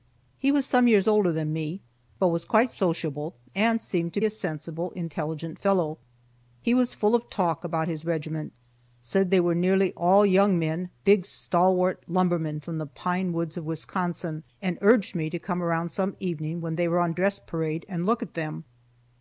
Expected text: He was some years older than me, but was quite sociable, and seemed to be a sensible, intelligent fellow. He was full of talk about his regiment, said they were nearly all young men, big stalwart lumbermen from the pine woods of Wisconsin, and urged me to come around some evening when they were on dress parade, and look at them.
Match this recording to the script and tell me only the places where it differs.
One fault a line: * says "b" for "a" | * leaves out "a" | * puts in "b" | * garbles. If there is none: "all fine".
* leaves out "be"